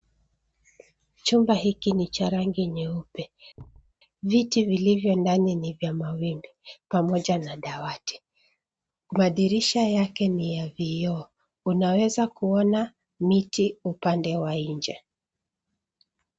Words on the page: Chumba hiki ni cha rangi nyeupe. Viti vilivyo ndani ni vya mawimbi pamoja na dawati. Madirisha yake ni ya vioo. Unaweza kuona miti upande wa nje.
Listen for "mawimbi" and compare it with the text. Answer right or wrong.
right